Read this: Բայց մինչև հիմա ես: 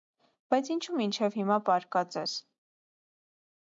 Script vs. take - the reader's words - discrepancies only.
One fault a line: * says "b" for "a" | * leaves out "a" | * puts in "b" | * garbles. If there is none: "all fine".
* puts in "ինչո՞ւ"
* puts in "պառկած"